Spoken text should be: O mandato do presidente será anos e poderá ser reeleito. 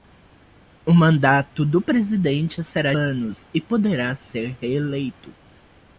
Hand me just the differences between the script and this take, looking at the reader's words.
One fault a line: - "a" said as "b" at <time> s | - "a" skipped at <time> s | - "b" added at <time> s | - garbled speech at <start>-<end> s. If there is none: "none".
none